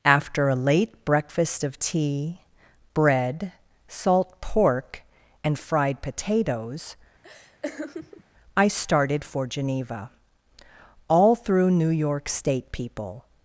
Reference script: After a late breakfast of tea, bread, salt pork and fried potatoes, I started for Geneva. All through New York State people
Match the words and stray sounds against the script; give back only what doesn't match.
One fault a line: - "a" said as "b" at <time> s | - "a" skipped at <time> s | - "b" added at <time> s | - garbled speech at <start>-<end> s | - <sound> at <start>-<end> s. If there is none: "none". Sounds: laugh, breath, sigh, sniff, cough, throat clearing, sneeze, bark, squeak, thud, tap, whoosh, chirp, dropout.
- laugh at 7.2-8.2 s